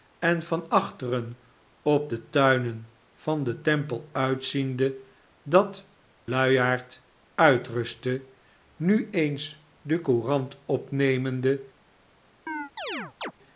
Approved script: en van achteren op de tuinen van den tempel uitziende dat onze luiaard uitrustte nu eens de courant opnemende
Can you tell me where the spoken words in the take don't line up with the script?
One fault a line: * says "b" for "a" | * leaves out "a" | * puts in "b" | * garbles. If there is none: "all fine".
* leaves out "onze"